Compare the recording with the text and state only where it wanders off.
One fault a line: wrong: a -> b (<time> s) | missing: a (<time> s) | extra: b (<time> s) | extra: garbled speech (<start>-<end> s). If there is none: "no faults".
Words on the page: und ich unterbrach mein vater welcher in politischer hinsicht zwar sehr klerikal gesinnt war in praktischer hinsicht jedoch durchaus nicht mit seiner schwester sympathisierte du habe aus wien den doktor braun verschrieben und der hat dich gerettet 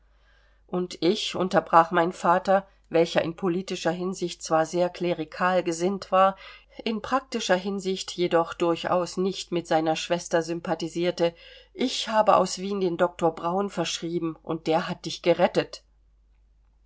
wrong: du -> ich (11.8 s)